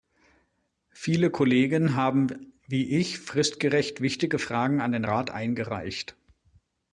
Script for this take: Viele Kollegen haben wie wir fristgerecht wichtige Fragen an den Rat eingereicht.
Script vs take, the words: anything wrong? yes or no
yes